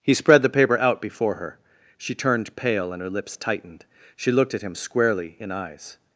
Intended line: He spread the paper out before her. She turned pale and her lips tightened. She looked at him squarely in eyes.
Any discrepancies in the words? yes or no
no